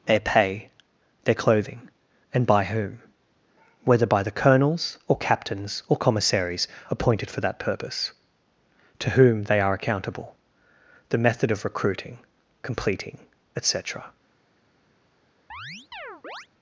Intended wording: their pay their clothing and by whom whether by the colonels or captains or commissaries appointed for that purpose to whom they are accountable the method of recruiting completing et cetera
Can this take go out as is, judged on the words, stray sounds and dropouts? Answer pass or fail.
fail